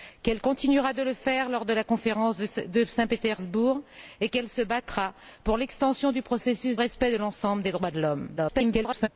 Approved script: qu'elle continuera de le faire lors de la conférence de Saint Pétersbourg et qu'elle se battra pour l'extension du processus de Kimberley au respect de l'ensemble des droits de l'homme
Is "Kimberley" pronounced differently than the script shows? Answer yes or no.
yes